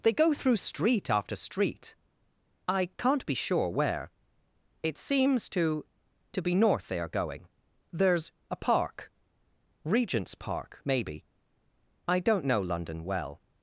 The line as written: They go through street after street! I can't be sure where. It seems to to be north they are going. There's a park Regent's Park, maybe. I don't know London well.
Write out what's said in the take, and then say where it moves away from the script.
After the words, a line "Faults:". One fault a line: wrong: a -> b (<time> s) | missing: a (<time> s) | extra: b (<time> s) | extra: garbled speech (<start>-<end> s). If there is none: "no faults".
They go through street after street! I can't be sure where. It seems to to be north they are going. There's a park Regent's Park, maybe. I don't know London well.
Faults:
no faults